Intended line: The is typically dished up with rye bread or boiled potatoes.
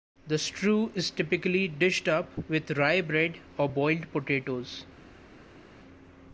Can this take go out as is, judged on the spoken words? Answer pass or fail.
fail